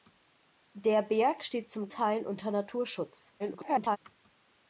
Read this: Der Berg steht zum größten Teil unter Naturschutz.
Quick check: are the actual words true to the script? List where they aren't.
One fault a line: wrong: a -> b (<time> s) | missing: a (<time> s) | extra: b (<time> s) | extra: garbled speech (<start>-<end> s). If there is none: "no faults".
missing: größten (1.9 s)
extra: garbled speech (3.4-4.0 s)